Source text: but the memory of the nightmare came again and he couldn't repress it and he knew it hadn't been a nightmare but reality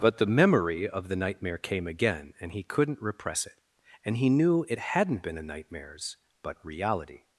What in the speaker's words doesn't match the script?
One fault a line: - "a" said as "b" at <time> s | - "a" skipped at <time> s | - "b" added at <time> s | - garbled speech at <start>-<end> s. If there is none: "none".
- "nightmare" said as "nightmares" at 5.4 s